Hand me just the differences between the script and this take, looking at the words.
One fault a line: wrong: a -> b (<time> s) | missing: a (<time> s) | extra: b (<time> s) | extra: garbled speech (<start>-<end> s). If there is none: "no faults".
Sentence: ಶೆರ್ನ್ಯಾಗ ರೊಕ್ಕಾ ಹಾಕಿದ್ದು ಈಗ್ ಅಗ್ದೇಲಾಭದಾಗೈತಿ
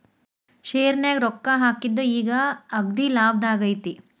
no faults